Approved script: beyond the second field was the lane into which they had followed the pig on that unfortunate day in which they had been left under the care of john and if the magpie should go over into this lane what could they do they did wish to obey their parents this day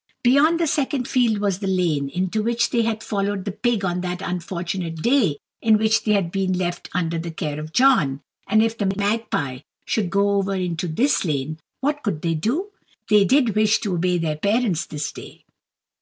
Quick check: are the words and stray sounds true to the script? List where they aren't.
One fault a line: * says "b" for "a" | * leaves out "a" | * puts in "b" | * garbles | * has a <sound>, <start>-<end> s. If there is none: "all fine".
all fine